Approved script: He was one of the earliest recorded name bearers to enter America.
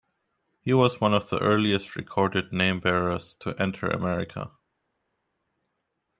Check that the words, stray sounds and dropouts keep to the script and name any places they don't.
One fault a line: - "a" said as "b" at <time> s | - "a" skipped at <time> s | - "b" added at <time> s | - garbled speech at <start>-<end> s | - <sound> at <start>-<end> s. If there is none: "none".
none